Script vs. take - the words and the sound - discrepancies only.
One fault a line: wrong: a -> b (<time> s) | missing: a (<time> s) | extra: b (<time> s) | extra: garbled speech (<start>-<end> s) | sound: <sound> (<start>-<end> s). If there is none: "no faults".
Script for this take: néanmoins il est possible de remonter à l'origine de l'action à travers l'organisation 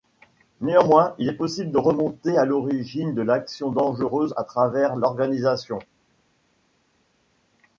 extra: dangereuse (3.7 s)